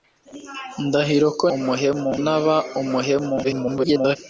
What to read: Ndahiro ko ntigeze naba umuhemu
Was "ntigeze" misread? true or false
true